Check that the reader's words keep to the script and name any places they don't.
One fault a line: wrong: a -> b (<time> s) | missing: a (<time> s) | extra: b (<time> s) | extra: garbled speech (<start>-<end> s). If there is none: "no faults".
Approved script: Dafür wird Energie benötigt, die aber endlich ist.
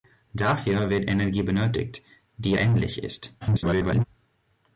missing: aber (2.6 s)
extra: garbled speech (3.4-4.0 s)